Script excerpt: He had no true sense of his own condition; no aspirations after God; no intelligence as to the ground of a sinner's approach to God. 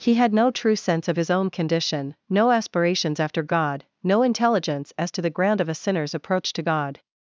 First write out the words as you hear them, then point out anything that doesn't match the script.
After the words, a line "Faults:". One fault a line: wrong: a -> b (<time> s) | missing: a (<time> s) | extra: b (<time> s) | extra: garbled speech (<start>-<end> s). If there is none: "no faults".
He had no true sense of his own condition; no aspirations after God; no intelligence as to the ground of a sinner's approach to God.
Faults:
no faults